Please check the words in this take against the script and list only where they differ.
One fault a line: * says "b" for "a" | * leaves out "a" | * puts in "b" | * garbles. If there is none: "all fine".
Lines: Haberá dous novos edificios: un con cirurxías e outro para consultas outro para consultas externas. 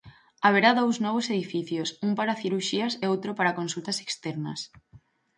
* says "para" for "con"
* leaves out "outro para consultas"